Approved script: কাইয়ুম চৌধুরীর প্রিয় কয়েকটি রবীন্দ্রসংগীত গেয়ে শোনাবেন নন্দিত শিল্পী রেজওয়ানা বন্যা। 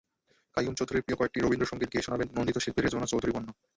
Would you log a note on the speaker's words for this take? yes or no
yes